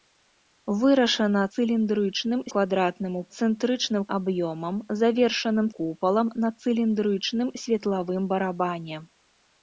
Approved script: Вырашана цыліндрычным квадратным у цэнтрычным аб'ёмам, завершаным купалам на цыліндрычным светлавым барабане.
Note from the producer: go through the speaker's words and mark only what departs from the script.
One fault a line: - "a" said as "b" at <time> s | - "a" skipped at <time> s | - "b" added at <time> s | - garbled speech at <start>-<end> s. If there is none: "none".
none